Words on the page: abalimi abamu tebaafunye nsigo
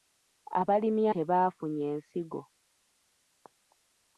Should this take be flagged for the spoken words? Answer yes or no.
yes